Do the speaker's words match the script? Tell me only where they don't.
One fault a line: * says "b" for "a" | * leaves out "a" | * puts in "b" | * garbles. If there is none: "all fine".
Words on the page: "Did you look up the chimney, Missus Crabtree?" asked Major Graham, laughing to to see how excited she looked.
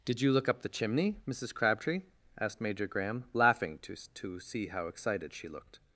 all fine